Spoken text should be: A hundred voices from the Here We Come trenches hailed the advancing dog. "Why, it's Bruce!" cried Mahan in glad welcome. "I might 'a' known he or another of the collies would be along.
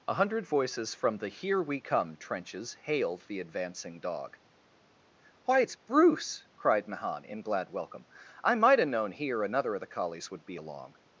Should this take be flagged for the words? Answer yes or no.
yes